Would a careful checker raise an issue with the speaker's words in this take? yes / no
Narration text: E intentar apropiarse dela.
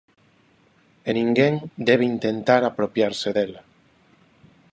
yes